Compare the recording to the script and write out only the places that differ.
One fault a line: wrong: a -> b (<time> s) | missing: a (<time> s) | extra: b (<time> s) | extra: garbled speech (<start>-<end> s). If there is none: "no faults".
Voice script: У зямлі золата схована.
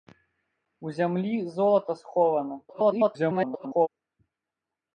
extra: garbled speech (2.7-3.9 s)